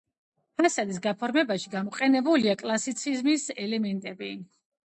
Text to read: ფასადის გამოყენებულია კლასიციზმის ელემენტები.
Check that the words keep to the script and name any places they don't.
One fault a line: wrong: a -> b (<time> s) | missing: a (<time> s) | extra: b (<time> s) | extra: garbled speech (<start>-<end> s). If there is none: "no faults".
extra: გაფორმებაში (1.0 s)